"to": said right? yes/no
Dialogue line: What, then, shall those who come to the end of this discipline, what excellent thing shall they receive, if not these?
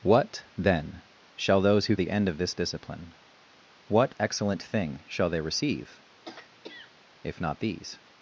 no